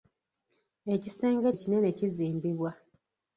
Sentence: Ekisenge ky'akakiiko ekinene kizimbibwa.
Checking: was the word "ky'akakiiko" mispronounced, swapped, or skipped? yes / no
yes